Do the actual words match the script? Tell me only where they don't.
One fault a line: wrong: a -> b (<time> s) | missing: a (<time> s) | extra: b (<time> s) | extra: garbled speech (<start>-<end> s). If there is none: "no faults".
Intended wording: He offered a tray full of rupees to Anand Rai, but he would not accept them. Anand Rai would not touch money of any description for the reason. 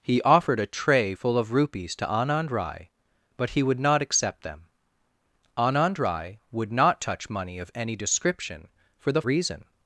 no faults